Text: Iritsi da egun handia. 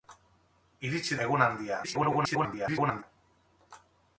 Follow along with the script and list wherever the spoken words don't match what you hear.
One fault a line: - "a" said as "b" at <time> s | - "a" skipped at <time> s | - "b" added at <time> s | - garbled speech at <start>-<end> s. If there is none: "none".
- "da" skipped at 1.2 s
- garbled speech at 1.8-3.0 s